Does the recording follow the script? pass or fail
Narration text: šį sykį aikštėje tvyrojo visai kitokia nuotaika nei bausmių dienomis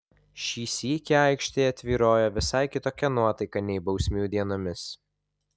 pass